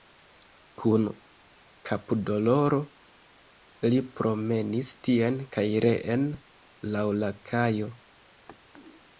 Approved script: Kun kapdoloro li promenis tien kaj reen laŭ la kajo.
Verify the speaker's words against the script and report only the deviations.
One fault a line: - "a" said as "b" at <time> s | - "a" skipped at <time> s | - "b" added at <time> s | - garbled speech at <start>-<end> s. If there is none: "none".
none